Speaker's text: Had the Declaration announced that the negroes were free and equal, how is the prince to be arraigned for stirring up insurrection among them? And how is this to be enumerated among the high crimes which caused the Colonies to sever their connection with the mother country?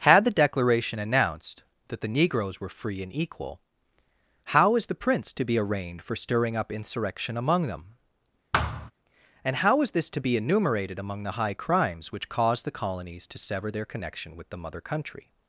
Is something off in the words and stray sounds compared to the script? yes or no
yes